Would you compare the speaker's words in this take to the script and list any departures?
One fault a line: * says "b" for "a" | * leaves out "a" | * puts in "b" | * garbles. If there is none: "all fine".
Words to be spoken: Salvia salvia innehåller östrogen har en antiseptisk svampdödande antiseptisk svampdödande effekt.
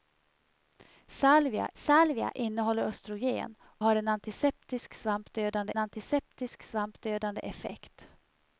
all fine